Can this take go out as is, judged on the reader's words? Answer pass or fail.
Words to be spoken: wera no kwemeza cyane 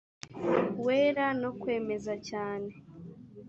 pass